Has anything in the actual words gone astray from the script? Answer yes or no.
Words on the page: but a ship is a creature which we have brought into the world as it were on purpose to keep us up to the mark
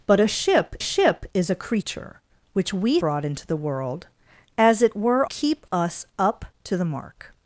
yes